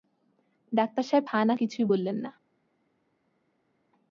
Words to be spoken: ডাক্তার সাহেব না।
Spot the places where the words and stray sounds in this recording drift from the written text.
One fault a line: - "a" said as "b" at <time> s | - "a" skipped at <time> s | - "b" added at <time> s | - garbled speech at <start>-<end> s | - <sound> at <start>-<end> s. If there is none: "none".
- "হা-না কিছুই বললেন" added at 1.3 s